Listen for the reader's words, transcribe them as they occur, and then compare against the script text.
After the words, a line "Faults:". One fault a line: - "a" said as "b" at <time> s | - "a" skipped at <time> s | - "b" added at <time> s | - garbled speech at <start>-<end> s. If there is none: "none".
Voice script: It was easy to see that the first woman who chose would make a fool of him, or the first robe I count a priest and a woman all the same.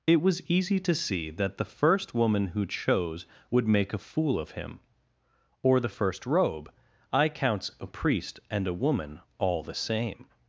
It was easy to see that the first woman who chose would make a fool of him, or the first robe I counts a priest and a woman all the same.
Faults:
- "count" said as "counts" at 7.3 s